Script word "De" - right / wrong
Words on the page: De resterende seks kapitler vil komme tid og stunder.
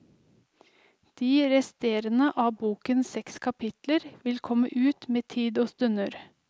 right